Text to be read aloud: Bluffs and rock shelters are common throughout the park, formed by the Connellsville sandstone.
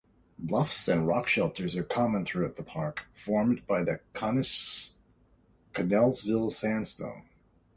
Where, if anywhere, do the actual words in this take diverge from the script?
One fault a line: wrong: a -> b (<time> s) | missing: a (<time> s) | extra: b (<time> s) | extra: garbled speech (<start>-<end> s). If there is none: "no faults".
no faults